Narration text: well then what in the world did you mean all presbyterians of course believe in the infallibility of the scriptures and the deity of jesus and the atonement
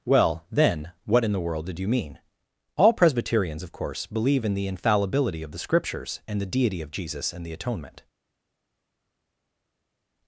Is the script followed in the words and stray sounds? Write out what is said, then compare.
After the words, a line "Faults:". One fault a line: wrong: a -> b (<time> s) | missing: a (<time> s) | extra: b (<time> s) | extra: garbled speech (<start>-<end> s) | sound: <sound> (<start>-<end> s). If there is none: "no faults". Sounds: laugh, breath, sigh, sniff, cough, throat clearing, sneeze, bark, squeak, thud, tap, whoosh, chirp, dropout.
well then what in the world did you mean all presbyterians of course believe in the infallibility of the scriptures and the deity of jesus and the atonement
Faults:
no faults